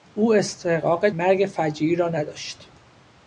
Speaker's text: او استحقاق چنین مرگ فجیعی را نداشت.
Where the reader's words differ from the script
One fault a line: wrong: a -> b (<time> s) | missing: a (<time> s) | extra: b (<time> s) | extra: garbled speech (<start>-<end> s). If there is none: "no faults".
missing: چنین (1.1 s)